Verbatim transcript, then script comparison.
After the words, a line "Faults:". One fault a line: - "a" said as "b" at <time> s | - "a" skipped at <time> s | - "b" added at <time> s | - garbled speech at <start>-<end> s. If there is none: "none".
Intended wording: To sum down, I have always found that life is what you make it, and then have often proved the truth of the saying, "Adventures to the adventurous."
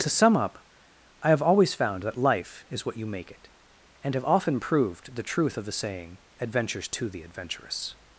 To sum up, I have always found that life is what you make it, and have often proved the truth of the saying, "Adventures to the adventurous."
Faults:
- "down" said as "up" at 0.3 s
- "then" skipped at 4.1 s